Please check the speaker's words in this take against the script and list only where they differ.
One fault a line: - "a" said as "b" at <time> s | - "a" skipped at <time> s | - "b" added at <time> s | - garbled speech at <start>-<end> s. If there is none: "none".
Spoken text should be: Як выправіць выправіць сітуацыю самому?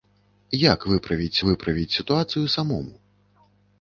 none